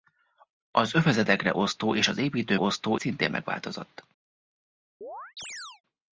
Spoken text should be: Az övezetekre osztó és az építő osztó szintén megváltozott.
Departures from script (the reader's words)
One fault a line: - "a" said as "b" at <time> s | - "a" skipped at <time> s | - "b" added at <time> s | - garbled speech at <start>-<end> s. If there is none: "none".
none